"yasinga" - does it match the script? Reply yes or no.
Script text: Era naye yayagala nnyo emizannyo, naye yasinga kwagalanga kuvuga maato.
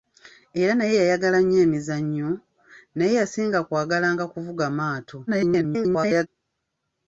yes